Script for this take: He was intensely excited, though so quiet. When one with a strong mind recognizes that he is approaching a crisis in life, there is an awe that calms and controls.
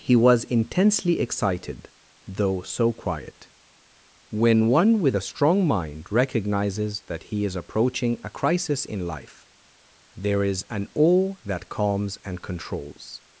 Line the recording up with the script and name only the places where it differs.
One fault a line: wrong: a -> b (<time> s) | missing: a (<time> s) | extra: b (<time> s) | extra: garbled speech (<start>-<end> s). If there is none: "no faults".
no faults